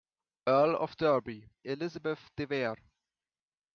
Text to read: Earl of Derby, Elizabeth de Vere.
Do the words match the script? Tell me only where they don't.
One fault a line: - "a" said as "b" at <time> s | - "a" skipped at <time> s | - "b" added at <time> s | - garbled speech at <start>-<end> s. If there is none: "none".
none